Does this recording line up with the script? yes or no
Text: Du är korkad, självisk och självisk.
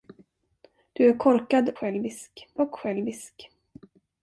yes